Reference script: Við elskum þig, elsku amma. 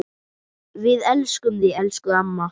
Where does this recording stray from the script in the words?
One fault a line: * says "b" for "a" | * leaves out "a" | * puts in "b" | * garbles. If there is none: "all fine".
all fine